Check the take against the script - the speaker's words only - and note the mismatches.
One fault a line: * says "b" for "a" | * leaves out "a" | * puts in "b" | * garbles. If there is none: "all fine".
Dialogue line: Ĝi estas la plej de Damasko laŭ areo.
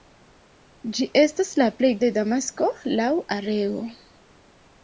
all fine